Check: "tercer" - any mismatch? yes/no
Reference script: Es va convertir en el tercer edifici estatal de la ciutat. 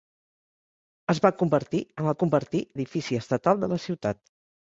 yes